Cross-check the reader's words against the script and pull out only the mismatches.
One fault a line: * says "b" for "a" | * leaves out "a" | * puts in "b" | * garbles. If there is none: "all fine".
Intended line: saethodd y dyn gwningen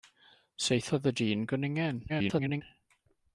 * garbles